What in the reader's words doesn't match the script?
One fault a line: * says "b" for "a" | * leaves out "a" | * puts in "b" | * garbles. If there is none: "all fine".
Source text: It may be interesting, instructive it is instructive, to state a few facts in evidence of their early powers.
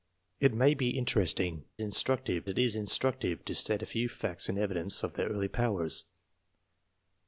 all fine